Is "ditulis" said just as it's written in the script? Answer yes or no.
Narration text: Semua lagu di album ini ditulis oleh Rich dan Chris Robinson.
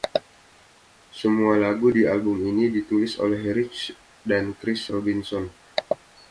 yes